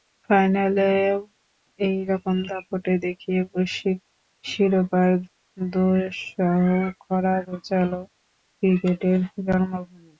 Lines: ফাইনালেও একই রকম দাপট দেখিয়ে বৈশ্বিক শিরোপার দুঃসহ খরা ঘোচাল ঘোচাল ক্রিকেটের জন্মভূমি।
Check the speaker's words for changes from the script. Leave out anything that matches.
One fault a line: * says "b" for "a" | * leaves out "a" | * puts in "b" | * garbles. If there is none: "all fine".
* leaves out "ঘোচাল"